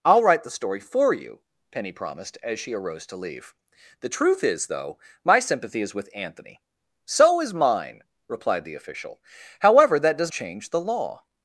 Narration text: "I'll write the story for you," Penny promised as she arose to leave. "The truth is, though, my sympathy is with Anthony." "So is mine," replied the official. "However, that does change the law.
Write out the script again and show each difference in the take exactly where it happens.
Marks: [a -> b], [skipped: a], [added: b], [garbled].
"I'll write the story for you," Penny promised as she arose to leave. "The truth is, though, my sympathy is with Anthony." "So is mine," replied the official. "However, that does change the law.